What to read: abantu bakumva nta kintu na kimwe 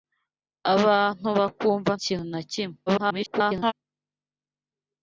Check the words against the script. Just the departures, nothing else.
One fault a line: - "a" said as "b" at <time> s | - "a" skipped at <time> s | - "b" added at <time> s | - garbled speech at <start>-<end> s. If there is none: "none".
- "nta" skipped at 1.9 s
- garbled speech at 2.9-3.7 s